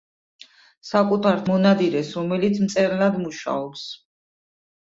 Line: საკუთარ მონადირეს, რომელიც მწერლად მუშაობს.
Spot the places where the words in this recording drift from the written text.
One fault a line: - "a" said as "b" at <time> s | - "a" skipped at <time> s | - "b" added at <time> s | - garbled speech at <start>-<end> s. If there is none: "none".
none